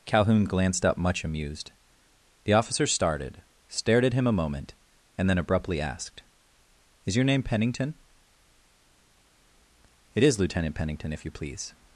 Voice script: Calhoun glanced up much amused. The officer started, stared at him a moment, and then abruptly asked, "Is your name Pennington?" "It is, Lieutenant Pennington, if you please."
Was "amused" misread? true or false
false